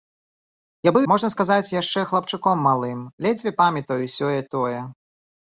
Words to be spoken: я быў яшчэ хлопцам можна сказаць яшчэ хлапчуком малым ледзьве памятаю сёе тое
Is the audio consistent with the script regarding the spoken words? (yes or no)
no